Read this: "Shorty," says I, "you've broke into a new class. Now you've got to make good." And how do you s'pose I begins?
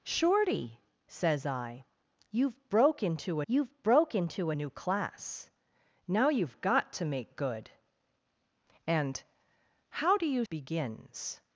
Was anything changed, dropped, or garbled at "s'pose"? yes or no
yes